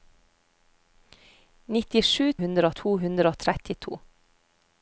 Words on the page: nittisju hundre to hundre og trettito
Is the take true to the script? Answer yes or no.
yes